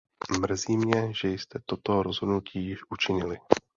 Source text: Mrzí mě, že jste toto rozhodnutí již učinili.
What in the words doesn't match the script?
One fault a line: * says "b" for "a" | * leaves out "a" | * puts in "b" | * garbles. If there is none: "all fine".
all fine